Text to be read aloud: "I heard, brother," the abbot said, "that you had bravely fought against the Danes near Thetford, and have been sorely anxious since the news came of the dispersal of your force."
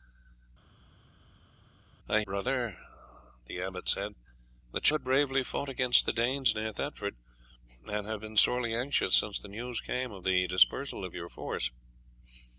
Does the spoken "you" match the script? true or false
false